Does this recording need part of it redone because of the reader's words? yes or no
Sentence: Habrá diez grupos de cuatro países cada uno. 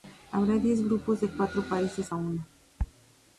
yes